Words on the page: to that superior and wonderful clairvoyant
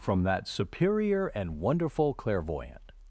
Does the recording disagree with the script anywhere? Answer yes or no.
yes